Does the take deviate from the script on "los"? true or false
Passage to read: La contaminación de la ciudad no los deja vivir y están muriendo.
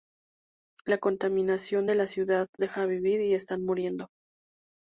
true